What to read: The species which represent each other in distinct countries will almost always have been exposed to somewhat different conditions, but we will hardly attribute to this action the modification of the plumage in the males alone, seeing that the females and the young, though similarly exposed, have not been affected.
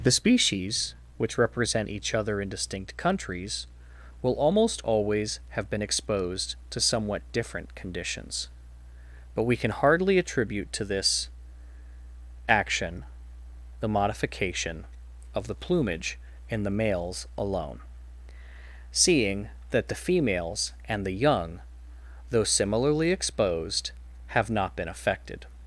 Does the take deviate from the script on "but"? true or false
false